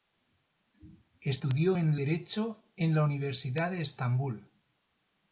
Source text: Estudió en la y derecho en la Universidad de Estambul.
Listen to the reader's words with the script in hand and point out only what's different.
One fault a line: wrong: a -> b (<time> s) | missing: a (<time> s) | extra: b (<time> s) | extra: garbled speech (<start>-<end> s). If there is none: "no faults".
missing: la y (2.0 s)